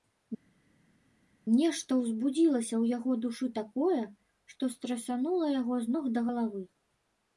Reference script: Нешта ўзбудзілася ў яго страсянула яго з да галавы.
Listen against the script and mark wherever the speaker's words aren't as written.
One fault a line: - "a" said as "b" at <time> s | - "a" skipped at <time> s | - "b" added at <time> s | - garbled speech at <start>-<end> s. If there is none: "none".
- "душы такое што" added at 3.2 s
- "ног" added at 5.9 s